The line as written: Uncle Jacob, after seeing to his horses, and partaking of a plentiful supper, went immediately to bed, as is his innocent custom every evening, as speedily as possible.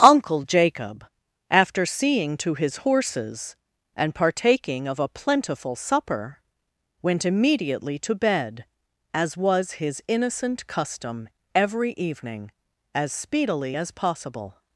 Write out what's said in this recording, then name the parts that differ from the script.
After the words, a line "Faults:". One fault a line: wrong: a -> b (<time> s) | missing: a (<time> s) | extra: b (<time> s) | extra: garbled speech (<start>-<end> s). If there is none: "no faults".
Uncle Jacob, after seeing to his horses, and partaking of a plentiful supper, went immediately to bed, as was his innocent custom every evening, as speedily as possible.
Faults:
wrong: is -> was (9.4 s)